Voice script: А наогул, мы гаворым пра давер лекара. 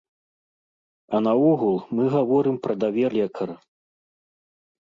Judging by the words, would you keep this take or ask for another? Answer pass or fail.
pass